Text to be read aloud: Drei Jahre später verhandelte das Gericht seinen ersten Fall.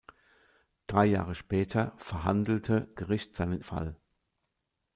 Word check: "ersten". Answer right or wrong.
wrong